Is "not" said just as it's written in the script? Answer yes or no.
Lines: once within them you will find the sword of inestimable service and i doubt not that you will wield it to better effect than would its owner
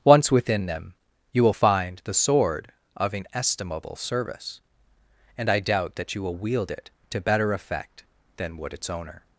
no